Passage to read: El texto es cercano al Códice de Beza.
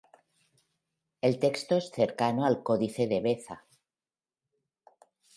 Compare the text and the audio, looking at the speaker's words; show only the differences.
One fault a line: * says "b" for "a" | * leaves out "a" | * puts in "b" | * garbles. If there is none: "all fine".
all fine